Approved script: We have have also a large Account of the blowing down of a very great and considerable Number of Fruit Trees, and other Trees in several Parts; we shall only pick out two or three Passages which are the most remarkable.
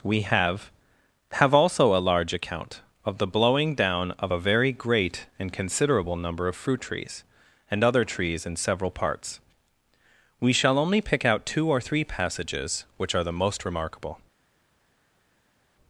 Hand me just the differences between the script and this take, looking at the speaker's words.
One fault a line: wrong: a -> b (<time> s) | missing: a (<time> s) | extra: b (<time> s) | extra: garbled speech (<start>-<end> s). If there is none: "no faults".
no faults